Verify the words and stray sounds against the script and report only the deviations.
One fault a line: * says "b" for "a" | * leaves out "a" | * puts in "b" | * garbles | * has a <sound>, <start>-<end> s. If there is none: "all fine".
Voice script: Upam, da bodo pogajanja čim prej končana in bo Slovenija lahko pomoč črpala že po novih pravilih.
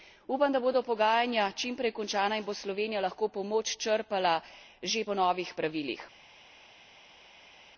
all fine